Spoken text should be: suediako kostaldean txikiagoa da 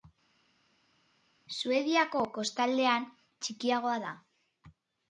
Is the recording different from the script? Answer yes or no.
no